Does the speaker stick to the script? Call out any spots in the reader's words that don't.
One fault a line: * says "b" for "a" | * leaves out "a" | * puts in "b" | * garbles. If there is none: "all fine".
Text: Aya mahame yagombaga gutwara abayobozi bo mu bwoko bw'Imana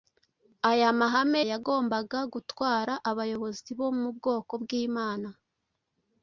all fine